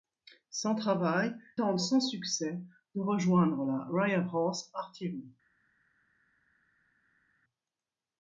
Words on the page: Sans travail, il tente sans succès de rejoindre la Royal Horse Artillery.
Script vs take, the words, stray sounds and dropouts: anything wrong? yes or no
yes